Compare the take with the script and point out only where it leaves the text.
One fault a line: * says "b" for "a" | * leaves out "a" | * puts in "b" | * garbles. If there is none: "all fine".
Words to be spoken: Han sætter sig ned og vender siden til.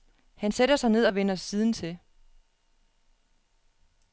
all fine